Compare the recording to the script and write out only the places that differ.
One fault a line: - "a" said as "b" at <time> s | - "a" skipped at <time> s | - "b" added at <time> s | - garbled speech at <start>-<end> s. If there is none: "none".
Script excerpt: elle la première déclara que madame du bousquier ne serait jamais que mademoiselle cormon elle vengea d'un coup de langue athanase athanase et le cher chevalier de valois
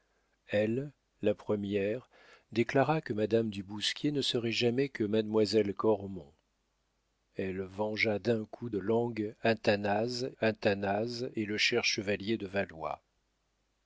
none